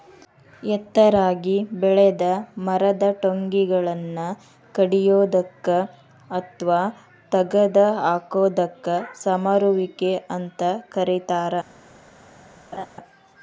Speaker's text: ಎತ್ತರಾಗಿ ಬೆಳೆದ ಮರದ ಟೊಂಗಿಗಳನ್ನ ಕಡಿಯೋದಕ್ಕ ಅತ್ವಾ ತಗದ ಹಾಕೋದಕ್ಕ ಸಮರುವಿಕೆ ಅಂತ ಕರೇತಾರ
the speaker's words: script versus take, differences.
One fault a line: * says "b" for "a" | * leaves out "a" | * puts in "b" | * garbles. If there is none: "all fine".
all fine